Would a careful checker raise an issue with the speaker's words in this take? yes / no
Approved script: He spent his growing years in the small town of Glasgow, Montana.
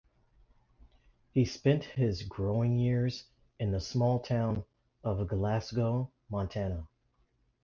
no